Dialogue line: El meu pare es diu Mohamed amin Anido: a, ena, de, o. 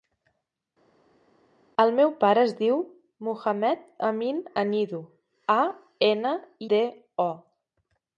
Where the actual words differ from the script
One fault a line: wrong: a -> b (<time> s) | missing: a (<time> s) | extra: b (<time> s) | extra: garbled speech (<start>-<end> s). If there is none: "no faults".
no faults